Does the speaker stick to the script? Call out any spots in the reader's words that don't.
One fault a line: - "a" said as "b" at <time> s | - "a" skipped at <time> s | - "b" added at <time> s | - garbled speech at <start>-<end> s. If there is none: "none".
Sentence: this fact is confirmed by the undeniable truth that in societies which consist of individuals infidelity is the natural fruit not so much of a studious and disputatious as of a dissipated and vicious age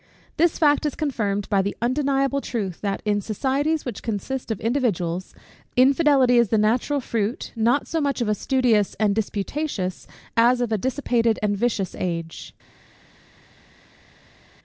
none